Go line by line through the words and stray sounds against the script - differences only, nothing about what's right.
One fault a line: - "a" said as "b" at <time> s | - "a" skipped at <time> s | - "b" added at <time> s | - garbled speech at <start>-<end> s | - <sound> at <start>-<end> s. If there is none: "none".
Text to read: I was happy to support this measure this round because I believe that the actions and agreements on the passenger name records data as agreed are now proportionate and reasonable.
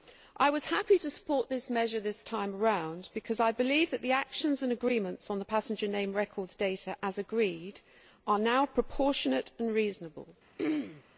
- "time" added at 2.2 s
- throat clearing at 10.6-11.0 s